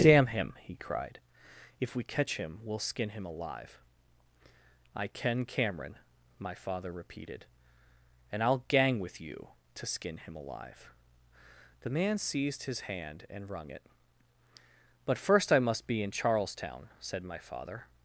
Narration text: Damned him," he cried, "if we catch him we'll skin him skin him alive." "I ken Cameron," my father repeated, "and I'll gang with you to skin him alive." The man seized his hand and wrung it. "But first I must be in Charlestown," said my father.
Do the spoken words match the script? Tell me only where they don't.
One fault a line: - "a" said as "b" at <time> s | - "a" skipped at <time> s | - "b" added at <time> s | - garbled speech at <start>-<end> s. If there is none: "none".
- "Damned" said as "Damn" at 0.0 s
- "skin him" skipped at 3.2 s